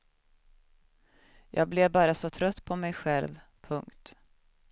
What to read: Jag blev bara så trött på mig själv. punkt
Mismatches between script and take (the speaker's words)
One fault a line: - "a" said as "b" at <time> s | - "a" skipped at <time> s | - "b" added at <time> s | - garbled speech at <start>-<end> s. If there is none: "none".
none